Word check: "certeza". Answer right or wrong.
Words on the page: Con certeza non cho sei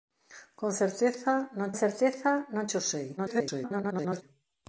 right